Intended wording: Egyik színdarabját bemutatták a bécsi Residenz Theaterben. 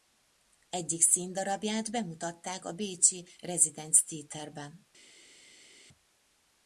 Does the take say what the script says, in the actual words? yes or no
yes